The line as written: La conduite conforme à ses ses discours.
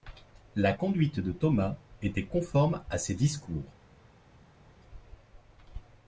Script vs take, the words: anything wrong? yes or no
yes